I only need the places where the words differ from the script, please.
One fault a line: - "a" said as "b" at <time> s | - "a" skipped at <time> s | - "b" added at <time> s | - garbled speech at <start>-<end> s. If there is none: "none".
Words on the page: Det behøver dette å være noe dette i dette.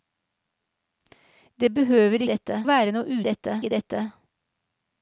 none